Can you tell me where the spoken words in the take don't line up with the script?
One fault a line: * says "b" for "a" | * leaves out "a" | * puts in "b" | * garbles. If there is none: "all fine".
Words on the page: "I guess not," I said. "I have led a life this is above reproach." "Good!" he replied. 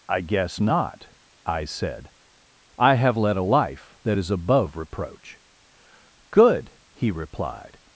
* says "that" for "this"